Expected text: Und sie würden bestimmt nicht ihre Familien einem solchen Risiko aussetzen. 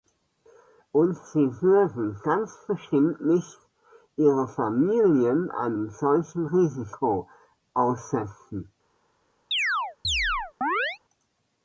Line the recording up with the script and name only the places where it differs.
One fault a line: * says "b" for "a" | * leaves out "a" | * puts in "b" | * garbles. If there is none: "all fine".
* puts in "ganz"